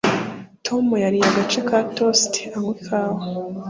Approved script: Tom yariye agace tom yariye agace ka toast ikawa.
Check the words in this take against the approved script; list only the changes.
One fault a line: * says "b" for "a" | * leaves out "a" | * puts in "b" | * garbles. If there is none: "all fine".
* leaves out "tom yariye agace"
* puts in "anywa"